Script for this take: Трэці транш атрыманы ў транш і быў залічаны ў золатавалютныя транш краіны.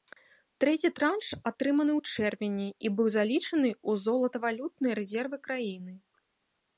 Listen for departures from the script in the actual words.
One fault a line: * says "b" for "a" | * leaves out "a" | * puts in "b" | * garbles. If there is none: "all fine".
* says "чэрвені" for "транш"
* says "рэзервы" for "транш"